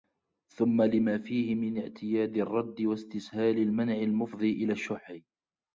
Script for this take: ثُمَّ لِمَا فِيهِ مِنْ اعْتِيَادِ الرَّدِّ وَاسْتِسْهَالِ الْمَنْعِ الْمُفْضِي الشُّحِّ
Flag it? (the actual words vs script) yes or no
yes